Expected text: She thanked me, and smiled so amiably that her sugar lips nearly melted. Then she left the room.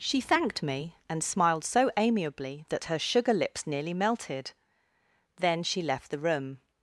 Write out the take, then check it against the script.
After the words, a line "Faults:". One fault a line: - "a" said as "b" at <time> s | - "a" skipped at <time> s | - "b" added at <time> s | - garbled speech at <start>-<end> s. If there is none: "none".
She thanked me, and smiled so amiably that her sugar lips nearly melted. Then she left the room.
Faults:
none